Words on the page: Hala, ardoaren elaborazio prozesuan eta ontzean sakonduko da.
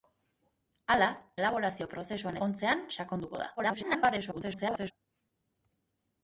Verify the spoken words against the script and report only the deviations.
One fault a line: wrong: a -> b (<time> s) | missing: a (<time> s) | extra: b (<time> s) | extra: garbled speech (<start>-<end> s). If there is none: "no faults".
missing: ardoaren (1.1 s)
missing: eta (2.4 s)
extra: garbled speech (3.6-4.9 s)